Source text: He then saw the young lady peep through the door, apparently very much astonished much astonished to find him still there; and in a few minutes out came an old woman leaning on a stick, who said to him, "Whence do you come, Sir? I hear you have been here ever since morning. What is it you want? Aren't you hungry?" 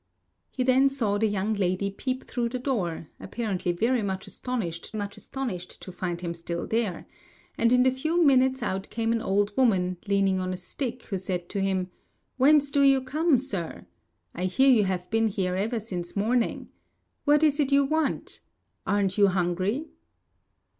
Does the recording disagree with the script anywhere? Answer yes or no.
no